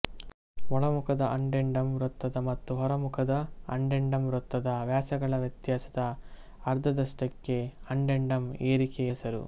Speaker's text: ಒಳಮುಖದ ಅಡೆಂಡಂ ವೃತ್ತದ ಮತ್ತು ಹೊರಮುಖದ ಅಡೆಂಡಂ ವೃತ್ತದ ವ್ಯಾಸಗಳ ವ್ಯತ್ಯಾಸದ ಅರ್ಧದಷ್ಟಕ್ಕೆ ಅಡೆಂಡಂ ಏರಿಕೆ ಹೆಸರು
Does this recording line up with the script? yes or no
yes